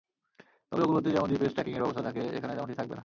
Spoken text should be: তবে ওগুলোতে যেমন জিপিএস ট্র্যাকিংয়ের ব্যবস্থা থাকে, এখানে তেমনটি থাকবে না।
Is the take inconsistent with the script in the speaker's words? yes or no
no